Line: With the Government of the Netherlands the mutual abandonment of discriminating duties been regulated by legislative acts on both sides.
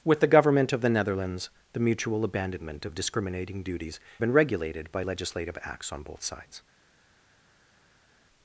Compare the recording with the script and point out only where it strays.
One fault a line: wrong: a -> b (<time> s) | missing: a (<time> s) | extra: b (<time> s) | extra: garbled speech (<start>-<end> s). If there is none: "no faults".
no faults